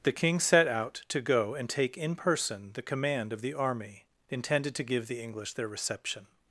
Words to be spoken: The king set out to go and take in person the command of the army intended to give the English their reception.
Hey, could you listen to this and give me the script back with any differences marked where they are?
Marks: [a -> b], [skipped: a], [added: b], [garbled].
The king set out to go and take in person the command of the army intended to give the English their reception.